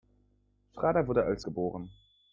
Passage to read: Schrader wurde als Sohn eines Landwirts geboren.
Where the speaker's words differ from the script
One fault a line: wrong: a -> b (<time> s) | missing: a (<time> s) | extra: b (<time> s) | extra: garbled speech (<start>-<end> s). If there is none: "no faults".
missing: Sohn eines Landwirts (1.4 s)